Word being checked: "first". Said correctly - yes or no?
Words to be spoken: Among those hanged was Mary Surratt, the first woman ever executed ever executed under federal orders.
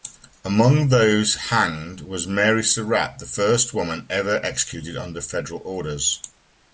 yes